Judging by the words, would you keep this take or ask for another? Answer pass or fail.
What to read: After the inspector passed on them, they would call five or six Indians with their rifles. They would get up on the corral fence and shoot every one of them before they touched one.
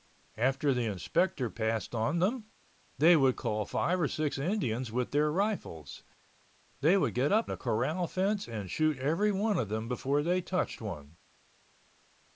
fail